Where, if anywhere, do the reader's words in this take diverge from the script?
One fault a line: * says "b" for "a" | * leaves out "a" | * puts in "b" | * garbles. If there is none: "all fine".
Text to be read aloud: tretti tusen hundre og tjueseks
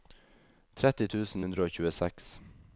all fine